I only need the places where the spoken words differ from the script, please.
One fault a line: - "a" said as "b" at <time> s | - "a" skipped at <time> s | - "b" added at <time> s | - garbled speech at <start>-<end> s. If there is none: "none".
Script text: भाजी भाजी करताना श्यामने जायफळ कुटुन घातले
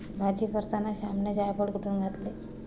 - "भाजी" skipped at 0.5 s